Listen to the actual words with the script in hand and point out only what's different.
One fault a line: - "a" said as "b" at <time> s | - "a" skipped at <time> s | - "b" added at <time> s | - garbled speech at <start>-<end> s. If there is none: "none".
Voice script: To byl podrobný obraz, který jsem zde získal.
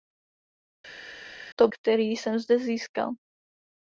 - "byl podrobný obraz" skipped at 1.7 s